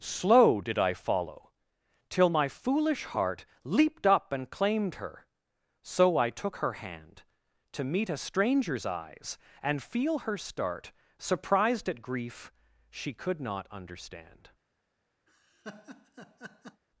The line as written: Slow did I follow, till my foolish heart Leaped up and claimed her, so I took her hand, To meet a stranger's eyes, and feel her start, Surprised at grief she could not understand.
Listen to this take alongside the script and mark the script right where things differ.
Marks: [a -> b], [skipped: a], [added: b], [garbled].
Slow did I follow, till my foolish heart Leaped up and claimed her, so I took her hand, To meet a stranger's eyes, and feel her start, Surprised at grief she could not understand.